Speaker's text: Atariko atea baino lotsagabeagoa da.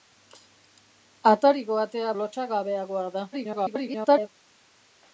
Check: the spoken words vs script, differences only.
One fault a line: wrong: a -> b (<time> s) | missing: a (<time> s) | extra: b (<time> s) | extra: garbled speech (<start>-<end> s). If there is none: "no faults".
missing: baino (2.1 s)
extra: garbled speech (3.3-4.3 s)